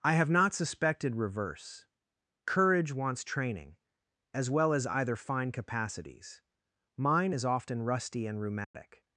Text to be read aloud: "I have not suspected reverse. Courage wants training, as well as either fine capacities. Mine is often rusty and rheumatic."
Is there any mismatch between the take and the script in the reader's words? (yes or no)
no